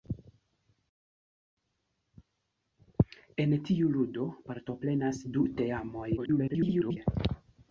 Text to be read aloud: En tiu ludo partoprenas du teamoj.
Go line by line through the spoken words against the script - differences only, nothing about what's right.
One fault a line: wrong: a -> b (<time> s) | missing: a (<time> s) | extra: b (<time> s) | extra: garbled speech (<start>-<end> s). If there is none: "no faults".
extra: garbled speech (6.2-7.0 s)